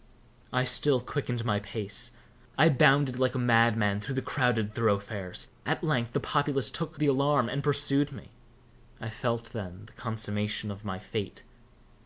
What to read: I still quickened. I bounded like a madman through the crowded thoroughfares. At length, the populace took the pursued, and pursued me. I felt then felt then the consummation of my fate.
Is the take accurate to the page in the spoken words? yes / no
no